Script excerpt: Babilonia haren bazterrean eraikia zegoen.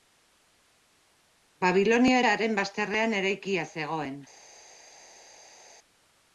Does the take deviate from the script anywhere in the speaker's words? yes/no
no